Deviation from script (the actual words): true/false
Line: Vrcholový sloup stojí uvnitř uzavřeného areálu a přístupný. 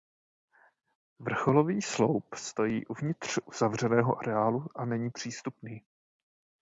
true